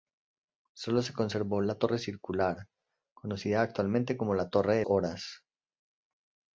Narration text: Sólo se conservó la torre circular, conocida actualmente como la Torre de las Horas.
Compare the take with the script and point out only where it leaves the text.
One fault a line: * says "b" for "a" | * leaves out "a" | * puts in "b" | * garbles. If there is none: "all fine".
* leaves out "las"